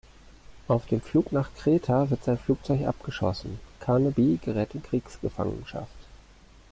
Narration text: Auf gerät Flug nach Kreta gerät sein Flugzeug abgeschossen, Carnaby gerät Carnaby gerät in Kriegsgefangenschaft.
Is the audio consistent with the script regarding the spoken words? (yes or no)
no